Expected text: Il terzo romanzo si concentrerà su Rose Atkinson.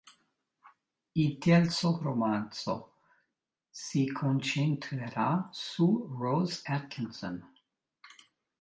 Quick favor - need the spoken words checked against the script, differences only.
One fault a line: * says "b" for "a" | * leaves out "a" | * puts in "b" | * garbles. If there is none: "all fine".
all fine